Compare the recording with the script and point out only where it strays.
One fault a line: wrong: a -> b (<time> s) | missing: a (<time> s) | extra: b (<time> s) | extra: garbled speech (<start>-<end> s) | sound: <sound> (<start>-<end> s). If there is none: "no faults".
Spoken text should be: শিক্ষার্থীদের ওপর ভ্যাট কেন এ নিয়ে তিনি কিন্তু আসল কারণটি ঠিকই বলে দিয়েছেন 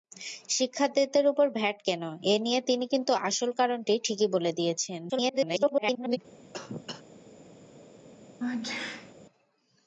extra: garbled speech (5.1-6.2 s)
sound: cough (6.5-7.0 s)
sound: sneeze (8.4-9.1 s)